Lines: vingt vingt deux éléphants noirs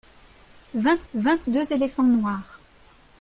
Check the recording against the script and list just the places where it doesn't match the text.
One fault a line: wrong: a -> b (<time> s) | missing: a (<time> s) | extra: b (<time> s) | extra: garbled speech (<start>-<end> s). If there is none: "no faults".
no faults